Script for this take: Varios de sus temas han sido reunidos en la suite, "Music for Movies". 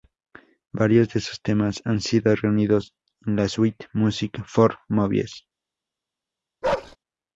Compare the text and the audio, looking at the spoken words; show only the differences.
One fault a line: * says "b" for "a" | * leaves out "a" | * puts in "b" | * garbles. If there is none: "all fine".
all fine